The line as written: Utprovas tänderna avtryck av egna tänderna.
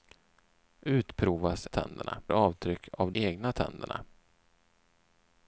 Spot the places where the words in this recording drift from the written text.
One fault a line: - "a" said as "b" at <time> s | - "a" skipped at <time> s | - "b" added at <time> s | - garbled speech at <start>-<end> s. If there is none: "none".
none